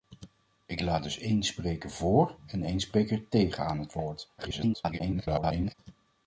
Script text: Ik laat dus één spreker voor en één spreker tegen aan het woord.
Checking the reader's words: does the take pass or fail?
fail